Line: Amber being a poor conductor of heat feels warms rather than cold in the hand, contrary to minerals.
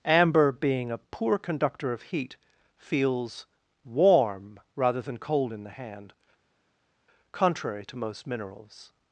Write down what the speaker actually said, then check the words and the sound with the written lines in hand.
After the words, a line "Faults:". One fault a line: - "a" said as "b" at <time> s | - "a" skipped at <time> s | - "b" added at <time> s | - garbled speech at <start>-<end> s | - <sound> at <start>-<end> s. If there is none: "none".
Amber being a poor conductor of heat feels warm rather than cold in the hand, contrary to most minerals.
Faults:
- "warms" said as "warm" at 3.9 s
- "most" added at 8.0 s